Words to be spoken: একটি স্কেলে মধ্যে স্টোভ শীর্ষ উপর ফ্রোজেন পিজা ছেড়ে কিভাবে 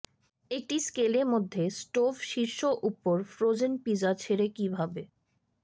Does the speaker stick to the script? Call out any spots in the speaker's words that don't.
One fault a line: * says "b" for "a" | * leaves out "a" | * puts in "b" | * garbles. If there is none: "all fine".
all fine